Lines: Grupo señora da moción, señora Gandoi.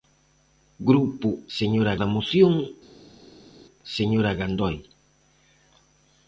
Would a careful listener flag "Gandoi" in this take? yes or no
no